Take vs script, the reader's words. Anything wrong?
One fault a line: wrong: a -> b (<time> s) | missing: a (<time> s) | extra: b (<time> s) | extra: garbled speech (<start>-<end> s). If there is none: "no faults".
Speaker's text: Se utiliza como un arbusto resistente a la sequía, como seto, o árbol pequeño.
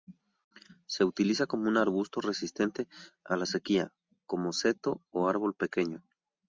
no faults